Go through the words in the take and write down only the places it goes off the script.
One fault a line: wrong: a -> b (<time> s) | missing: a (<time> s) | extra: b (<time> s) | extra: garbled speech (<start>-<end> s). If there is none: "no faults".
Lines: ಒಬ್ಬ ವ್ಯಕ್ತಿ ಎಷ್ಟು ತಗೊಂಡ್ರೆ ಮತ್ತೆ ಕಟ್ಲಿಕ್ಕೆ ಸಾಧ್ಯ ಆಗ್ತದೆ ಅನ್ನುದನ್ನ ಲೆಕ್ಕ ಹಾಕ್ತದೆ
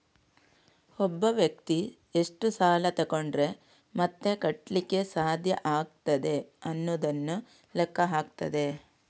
extra: ಸಾಲ (2.5 s)